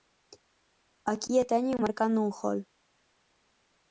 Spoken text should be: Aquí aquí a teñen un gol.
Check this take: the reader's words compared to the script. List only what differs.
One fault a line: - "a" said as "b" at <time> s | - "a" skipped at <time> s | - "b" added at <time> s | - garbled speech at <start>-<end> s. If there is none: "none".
- "aquí" skipped at 1.3 s
- "marcando" added at 1.8 s